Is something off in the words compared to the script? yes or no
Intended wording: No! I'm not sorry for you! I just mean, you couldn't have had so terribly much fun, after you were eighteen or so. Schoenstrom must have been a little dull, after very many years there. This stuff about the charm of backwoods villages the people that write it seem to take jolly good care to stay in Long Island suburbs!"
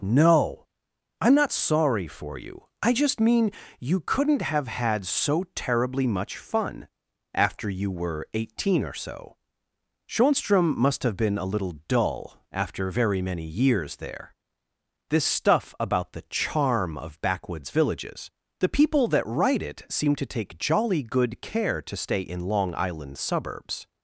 no